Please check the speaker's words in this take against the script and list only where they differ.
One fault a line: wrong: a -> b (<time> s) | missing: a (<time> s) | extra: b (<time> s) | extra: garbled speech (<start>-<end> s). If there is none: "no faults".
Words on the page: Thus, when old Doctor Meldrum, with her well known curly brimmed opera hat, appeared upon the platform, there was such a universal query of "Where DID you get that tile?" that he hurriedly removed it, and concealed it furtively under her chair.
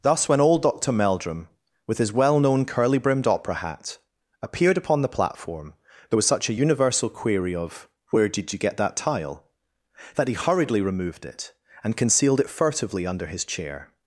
wrong: her -> his (2.0 s)
wrong: her -> his (13.3 s)